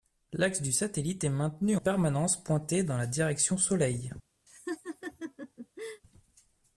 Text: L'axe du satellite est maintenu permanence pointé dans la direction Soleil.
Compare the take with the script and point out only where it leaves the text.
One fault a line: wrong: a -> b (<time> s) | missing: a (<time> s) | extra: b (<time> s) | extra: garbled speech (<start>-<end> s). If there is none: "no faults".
no faults